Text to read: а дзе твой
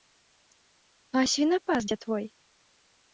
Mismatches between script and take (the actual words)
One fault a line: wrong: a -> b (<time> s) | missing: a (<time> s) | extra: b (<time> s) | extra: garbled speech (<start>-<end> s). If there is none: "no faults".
extra: свінапас (1.3 s)